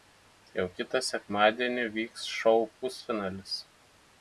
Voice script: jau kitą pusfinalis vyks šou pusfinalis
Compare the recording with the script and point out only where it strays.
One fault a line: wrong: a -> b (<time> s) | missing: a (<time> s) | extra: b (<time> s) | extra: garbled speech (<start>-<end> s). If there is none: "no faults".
wrong: pusfinalis -> sekmadienį (1.1 s)